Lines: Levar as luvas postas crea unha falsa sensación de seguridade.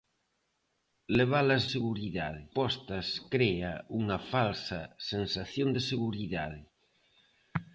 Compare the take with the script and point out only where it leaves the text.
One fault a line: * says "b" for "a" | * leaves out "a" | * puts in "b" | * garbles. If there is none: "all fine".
* says "seguridade" for "luvas"